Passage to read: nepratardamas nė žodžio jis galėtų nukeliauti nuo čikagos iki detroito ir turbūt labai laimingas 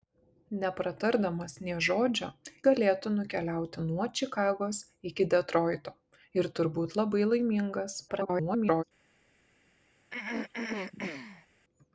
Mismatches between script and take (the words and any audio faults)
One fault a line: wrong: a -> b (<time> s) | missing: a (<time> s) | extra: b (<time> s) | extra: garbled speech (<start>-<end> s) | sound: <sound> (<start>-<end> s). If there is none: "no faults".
missing: jis (2.3 s)
extra: garbled speech (8.1-8.8 s)
sound: throat clearing (10.1-11.5 s)